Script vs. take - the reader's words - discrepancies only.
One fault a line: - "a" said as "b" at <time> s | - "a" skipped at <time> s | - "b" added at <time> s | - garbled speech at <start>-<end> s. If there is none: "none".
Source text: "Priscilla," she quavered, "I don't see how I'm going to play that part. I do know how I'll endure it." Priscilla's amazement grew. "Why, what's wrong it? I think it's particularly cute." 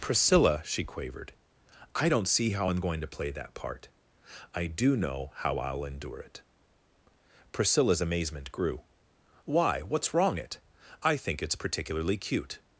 none